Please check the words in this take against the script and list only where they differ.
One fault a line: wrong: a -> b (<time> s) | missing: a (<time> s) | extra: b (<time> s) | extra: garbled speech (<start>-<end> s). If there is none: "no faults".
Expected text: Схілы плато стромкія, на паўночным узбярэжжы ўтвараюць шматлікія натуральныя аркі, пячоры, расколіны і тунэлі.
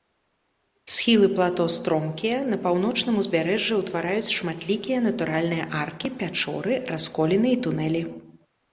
no faults